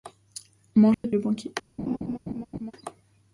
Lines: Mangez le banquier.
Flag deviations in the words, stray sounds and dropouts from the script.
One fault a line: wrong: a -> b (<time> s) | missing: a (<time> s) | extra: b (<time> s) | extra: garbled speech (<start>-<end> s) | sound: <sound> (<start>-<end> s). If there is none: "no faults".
sound: dropout (0.9-1.0 s)
sound: laugh (1.8-2.7 s)